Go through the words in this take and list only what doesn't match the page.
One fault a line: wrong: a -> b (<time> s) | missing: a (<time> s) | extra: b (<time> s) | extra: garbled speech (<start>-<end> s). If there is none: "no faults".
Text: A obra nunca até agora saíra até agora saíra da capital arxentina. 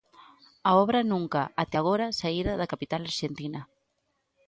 missing: até agora saíra (2.5 s)